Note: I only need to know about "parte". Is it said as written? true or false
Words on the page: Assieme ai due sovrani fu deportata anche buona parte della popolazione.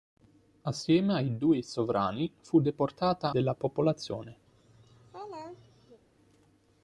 false